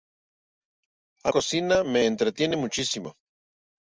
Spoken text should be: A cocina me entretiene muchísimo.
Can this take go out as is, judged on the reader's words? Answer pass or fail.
pass